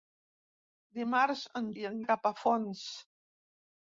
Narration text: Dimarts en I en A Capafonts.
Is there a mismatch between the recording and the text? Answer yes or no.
no